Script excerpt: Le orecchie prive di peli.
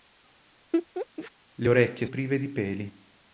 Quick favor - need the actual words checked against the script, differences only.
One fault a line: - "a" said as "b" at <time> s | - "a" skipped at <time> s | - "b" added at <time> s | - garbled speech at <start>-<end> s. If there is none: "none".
none